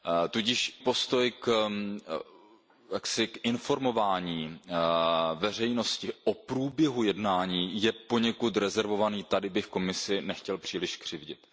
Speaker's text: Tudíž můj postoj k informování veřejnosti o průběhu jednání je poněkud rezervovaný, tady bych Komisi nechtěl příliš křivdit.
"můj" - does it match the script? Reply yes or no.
no